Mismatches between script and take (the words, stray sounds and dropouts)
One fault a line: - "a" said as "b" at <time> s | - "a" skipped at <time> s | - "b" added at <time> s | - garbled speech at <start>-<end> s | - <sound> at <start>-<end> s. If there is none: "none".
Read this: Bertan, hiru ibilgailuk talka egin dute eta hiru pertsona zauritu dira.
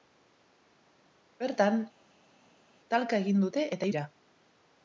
- "hiru ibilgailuk" skipped at 1.8 s
- "hiru pertsona zauritu" skipped at 3.9 s